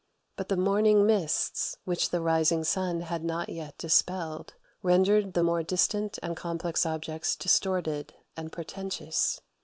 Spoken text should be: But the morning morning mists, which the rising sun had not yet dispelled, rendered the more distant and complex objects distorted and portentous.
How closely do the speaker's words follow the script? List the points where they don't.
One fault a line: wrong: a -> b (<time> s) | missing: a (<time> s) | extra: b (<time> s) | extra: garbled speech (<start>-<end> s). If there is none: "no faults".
missing: morning (1.1 s)